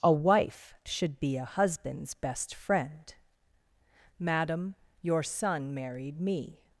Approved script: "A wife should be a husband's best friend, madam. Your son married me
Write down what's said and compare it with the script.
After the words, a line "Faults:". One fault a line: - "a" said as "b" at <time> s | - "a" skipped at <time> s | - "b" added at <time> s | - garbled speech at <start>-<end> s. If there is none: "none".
"A wife should be a husband's best friend, madam. Your son married me
Faults:
none